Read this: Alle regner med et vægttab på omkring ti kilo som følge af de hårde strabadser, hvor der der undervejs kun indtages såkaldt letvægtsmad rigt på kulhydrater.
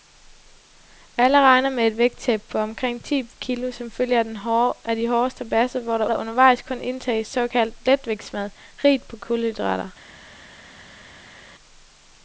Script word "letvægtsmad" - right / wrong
right